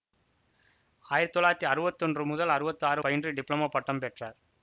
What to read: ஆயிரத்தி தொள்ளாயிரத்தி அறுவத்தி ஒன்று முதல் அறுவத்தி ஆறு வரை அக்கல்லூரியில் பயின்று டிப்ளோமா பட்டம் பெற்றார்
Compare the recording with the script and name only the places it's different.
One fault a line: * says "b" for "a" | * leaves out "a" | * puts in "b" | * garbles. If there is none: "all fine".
* leaves out "வரை அக்கல்லூரியில்"